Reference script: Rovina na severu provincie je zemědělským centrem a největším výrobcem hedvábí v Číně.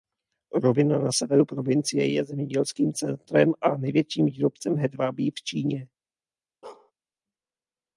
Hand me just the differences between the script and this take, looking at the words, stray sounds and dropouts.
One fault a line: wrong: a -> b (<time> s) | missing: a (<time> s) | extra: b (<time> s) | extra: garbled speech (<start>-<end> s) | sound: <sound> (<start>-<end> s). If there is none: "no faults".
sound: bark (6.6-6.9 s)